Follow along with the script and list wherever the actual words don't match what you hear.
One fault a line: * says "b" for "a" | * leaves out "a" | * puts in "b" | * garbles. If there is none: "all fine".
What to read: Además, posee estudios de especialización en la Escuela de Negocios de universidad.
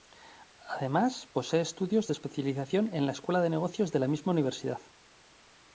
* puts in "la misma"